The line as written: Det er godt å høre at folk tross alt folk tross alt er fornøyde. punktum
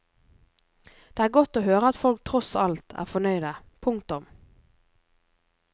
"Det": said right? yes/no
yes